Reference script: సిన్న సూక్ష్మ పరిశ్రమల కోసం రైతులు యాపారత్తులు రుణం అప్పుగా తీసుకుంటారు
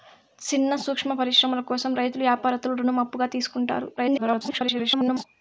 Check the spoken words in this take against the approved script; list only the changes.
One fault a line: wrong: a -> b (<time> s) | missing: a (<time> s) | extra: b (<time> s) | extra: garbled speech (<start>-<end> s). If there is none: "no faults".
extra: garbled speech (4.0-5.2 s)